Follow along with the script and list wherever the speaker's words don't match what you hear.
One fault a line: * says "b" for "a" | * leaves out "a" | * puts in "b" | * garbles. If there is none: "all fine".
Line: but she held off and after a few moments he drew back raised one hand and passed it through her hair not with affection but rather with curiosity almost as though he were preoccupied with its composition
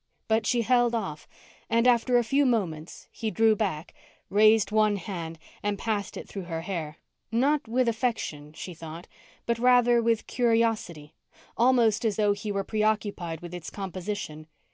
* puts in "she thought"